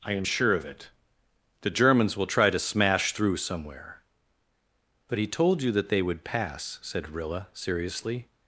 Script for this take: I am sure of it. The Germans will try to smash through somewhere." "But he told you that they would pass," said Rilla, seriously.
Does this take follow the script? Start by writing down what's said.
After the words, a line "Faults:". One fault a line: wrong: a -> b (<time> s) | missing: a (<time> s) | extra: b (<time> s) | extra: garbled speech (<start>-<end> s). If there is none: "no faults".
I am sure of it. The Germans will try to smash through somewhere." "But he told you that they would pass," said Rilla, seriously.
Faults:
no faults